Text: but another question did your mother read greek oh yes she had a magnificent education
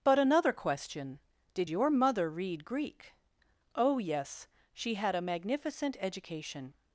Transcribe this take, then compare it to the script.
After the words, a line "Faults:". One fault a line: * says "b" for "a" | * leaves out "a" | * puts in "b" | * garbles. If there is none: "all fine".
but another question did your mother read greek oh yes she had a magnificent education
Faults:
all fine